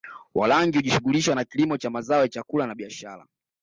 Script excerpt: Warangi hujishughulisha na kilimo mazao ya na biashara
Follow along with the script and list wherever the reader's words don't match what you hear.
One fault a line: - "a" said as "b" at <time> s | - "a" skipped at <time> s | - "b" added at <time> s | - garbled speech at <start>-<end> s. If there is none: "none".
- "cha" added at 1.8 s
- "chakula" added at 2.3 s